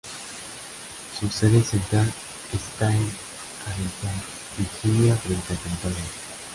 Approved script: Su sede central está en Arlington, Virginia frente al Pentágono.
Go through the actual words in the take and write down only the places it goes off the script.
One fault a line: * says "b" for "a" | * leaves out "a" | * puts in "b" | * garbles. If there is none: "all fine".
all fine